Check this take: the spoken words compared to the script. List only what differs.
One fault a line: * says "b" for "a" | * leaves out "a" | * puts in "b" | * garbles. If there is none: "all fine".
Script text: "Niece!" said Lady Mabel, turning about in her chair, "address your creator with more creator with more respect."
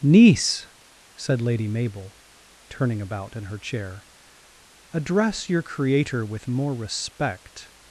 * leaves out "creator with more"